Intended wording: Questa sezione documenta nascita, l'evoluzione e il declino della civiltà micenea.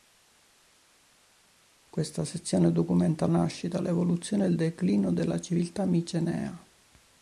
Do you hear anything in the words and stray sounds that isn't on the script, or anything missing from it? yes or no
no